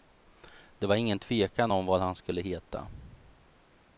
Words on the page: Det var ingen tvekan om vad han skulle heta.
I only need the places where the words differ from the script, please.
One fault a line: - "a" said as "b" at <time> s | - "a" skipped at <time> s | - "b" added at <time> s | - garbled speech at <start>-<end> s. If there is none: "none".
none